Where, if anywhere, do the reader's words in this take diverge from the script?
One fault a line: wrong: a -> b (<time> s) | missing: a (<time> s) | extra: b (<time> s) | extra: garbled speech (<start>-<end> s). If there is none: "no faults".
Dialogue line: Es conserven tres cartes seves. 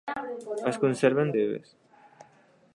missing: tres cartes (1.3 s)